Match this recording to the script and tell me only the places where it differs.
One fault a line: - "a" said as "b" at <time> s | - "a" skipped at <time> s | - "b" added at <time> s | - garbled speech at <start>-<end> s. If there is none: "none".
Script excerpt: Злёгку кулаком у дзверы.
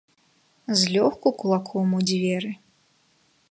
none